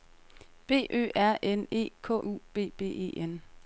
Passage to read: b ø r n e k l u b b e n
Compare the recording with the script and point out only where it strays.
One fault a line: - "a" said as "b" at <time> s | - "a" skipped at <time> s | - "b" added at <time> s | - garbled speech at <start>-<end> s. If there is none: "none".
- "l" skipped at 2.1 s